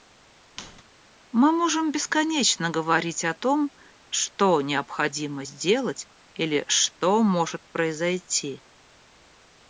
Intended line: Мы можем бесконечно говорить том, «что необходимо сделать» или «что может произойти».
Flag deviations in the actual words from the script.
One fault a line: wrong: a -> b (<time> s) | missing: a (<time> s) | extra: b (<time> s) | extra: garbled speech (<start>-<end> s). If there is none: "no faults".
extra: о (3.3 s)